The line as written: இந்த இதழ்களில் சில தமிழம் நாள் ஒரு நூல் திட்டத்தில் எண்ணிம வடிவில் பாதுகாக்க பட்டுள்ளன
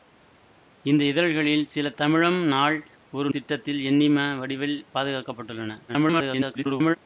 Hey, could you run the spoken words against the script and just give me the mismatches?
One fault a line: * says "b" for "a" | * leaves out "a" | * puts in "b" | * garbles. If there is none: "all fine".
* leaves out "நூல்"
* garbles